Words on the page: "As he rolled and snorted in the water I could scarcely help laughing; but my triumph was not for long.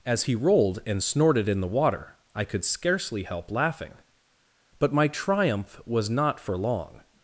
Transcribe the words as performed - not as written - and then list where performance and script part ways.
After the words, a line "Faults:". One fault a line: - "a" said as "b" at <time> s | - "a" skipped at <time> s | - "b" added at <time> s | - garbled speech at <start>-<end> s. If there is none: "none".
"As he rolled and snorted in the water I could scarcely help laughing; but my triumph was not for long.
Faults:
none